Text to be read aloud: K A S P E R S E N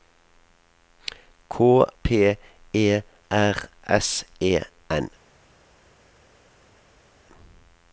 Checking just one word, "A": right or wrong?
wrong